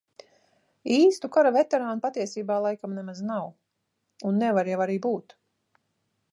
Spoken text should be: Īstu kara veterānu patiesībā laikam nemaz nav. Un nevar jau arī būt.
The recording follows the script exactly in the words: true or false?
true